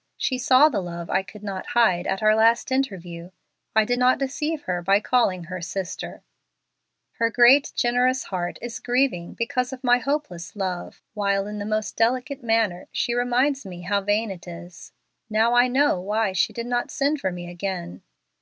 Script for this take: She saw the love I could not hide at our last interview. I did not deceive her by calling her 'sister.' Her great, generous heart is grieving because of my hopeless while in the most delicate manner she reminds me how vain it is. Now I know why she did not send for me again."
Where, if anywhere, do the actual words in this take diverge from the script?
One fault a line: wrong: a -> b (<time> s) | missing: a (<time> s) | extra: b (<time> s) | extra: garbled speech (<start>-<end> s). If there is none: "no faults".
extra: love (10.5 s)